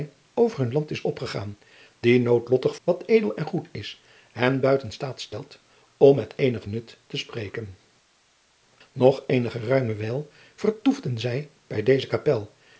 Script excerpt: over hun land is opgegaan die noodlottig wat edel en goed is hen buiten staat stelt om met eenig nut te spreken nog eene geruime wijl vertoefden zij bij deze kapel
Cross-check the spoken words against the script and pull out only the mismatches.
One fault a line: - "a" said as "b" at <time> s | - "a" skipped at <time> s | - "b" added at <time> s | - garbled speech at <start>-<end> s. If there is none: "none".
none